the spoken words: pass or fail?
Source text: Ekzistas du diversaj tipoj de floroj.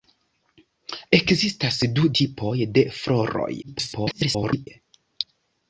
fail